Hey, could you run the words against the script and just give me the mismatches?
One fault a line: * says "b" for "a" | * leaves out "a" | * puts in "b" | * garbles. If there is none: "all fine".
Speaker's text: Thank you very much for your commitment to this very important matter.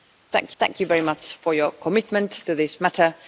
* puts in "thank"
* leaves out "very important"